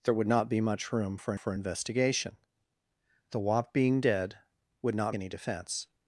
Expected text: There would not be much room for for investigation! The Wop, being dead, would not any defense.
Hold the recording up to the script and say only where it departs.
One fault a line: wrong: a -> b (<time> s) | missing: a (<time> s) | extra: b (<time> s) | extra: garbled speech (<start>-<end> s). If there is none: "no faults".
no faults